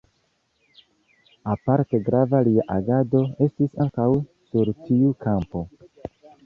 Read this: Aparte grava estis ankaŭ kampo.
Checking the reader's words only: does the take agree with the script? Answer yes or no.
no